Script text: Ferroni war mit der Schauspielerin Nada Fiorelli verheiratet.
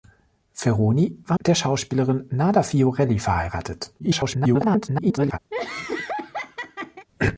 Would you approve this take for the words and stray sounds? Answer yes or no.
no